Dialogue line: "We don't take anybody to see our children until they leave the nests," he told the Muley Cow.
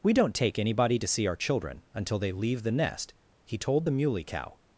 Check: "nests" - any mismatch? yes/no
yes